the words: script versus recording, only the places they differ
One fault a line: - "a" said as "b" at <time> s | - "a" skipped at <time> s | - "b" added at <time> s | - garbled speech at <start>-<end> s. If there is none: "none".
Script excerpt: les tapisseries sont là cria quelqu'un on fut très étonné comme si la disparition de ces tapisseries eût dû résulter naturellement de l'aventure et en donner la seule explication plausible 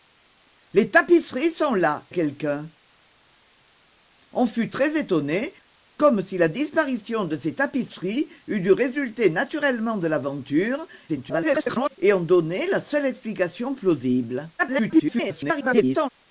- "cria" skipped at 2.1 s
- garbled speech at 11.1-12.0 s
- garbled speech at 14.6-16.1 s